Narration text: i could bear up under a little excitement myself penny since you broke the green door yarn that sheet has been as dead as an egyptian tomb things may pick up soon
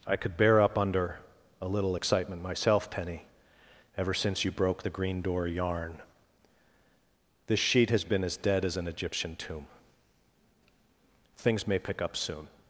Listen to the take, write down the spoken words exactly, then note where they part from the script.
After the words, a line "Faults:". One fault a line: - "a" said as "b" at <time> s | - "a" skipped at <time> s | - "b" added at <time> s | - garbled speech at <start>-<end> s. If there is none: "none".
i could bear up under a little excitement myself penny ever since you broke the green door yarn this sheet has been as dead as an egyptian tomb things may pick up soon
Faults:
- "ever" added at 4.0 s
- "that" said as "this" at 7.5 s